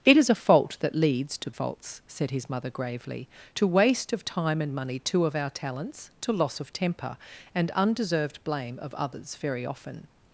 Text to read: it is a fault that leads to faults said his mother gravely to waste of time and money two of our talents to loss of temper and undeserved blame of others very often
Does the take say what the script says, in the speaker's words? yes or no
yes